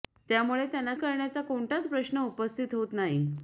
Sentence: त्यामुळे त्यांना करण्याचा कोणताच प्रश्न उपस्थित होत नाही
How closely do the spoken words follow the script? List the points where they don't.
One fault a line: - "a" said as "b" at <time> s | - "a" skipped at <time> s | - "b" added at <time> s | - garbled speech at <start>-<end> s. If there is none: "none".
none